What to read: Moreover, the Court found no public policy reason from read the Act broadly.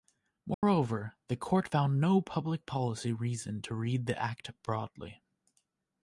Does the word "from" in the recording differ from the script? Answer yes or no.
yes